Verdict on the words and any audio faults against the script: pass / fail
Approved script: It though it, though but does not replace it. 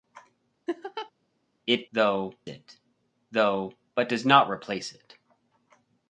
fail